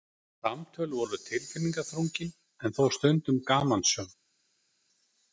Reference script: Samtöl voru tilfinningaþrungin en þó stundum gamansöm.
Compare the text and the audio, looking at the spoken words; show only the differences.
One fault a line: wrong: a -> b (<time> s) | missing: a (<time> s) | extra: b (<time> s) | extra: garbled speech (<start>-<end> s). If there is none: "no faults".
no faults